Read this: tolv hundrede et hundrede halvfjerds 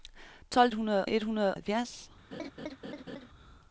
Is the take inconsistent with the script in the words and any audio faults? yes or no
yes